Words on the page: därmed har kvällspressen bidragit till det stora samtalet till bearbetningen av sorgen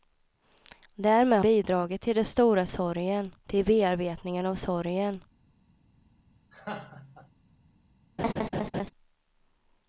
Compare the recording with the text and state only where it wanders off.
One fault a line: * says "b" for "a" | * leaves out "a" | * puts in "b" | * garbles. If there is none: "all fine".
* leaves out "har kvällspressen"
* says "sorgen" for "samtalet"